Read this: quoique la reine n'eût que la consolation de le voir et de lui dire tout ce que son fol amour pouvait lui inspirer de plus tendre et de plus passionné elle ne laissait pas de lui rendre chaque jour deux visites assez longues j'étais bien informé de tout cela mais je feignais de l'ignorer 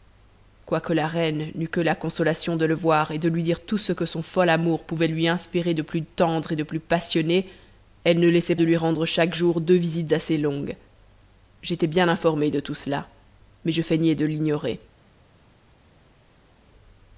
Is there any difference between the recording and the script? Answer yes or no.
yes